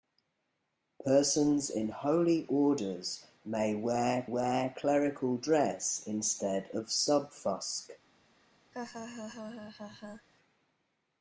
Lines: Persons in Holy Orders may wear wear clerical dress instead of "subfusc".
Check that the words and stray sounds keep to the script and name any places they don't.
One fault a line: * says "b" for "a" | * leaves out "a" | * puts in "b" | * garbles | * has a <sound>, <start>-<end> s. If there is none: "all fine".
* has a laugh, 8.7-10.3 s